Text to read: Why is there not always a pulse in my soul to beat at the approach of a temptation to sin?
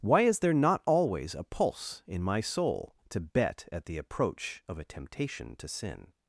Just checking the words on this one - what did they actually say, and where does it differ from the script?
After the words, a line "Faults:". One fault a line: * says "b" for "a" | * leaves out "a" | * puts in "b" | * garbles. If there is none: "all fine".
Why is there not always a pulse in my soul to bet at the approach of a temptation to sin?
Faults:
* says "bet" for "beat"